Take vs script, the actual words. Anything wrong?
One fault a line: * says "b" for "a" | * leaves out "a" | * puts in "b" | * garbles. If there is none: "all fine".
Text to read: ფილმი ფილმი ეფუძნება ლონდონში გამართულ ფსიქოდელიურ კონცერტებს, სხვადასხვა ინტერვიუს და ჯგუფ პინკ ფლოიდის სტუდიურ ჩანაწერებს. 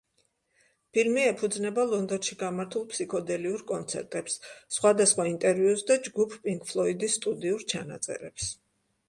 * leaves out "ფილმი"